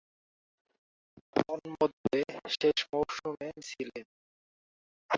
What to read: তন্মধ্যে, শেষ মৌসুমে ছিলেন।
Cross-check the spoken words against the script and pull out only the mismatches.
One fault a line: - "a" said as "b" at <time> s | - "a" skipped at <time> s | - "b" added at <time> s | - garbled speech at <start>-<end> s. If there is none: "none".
none